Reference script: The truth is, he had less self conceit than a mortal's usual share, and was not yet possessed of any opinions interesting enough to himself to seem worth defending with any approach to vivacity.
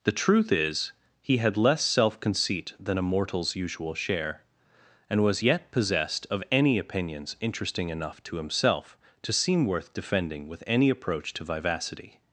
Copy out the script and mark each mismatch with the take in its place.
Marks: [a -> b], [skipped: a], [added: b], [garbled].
The truth is, he had less self conceit than a mortal's usual share, and was [skipped: not] yet possessed of any opinions interesting enough to himself to seem worth defending with any approach to vivacity.